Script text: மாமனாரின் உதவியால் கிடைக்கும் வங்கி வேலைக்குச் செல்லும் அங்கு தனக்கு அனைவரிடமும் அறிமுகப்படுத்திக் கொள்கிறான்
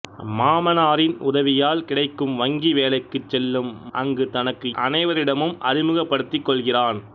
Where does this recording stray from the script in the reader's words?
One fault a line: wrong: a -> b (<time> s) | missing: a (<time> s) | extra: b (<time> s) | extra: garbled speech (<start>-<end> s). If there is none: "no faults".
no faults